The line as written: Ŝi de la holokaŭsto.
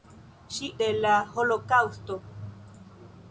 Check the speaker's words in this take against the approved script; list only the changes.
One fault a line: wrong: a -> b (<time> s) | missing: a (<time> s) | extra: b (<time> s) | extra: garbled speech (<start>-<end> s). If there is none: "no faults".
no faults